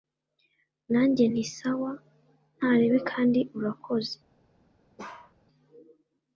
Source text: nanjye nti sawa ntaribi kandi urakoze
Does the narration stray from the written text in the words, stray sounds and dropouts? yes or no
yes